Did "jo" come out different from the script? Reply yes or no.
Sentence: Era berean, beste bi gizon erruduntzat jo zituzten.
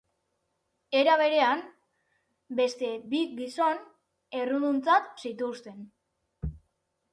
yes